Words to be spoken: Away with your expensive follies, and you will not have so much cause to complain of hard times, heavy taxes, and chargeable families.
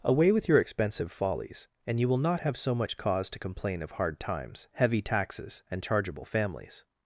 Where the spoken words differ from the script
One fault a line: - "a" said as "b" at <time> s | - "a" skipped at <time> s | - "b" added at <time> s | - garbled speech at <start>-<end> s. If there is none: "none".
none